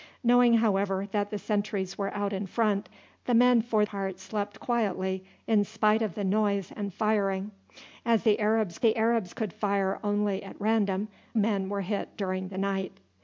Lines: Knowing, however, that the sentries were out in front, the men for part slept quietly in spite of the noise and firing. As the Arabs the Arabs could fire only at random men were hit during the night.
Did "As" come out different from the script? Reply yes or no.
no